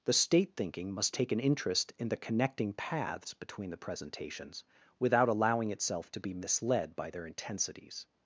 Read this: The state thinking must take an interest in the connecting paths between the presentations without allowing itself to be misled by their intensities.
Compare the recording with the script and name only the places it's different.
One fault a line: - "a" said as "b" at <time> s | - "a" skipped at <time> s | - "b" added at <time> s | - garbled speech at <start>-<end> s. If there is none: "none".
none